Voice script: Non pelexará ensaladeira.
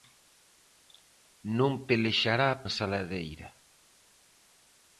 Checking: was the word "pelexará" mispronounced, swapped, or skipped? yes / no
no